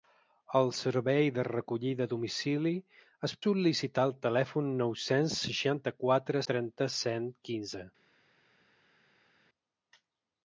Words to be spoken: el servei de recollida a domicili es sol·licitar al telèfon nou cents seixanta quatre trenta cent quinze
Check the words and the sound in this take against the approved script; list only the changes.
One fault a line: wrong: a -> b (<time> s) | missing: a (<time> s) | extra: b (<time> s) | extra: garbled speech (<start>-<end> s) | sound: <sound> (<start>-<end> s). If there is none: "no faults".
no faults